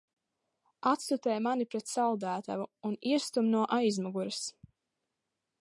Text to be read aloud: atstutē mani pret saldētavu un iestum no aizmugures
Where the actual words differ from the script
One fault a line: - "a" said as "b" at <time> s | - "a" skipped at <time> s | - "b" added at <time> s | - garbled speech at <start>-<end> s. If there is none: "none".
none